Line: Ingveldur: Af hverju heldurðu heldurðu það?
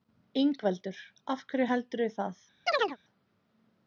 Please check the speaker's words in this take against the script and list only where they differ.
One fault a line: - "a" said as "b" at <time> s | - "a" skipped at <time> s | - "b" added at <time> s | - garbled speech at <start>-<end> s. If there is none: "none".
- "heldurðu" skipped at 2.1 s